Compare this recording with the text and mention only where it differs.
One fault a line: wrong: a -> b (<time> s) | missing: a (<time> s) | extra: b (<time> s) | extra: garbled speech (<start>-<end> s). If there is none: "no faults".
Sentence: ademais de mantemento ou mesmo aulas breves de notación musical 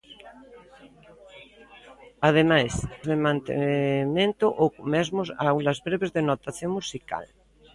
no faults